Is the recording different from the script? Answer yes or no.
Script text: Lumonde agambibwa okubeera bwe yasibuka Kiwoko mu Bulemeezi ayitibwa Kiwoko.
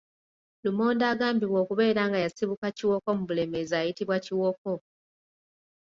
yes